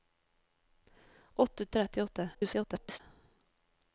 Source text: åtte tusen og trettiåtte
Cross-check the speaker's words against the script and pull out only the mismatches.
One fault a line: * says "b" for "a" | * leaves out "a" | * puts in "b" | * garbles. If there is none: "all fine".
* leaves out "tusen"
* garbles